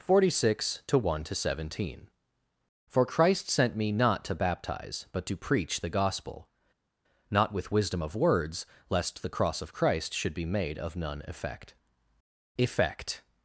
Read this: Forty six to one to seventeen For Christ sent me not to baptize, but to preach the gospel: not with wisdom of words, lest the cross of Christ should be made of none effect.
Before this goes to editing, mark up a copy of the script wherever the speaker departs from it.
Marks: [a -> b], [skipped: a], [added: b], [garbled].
Forty six to one to seventeen For Christ sent me not to baptize, but to preach the gospel: not with wisdom of words, lest the cross of Christ should be made of none effect. [added: effect]